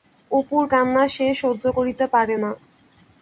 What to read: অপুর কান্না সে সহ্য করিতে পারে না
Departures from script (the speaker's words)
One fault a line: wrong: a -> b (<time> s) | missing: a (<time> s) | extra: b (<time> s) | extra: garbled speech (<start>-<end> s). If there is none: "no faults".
no faults